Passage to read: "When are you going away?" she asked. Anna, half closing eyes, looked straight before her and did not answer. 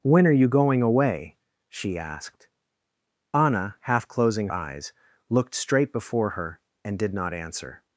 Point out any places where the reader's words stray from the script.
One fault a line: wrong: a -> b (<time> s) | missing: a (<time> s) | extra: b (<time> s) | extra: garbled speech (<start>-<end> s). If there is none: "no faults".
no faults